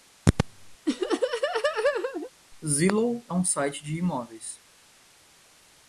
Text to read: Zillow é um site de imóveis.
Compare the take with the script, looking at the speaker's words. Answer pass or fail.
pass